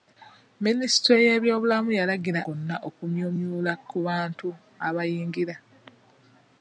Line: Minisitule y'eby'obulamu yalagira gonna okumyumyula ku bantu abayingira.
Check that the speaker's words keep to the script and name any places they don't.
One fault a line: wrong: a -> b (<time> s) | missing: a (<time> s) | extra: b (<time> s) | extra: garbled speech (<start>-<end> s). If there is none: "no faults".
no faults